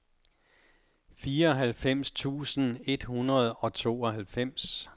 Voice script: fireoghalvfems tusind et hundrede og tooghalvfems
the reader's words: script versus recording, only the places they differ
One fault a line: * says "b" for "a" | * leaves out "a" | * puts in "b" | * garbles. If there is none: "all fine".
all fine